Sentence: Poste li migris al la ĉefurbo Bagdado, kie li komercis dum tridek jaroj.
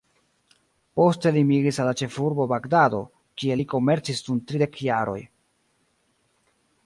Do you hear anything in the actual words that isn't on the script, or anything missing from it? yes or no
no